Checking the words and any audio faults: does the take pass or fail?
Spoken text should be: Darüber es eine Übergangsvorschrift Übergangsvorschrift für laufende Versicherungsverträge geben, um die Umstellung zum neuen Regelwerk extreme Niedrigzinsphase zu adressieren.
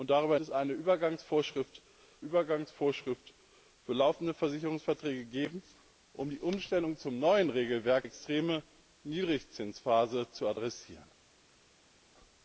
pass